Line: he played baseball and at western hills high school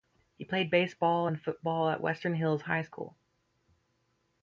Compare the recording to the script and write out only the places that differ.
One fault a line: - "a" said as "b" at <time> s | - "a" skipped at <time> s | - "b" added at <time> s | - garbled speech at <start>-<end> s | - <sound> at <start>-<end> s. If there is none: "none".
- "football" added at 1.4 s